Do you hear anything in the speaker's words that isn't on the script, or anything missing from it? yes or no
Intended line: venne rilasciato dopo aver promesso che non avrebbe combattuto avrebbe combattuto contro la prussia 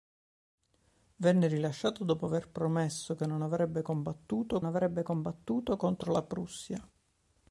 no